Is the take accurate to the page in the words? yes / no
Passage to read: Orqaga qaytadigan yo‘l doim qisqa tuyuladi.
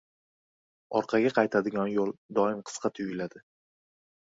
yes